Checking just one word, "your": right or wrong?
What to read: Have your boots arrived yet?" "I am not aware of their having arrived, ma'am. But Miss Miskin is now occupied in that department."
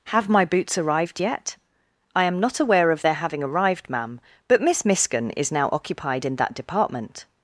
wrong